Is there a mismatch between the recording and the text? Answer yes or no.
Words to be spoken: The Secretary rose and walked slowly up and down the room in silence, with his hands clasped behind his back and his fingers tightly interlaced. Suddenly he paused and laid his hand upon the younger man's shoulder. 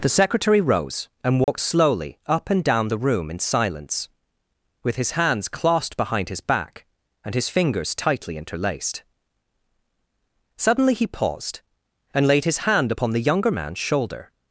no